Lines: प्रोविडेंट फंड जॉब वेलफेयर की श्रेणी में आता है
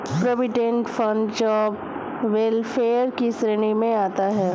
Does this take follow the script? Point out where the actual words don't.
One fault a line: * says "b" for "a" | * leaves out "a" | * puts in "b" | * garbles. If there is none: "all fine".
all fine